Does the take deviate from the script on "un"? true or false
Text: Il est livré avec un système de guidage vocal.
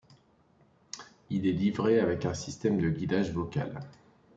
false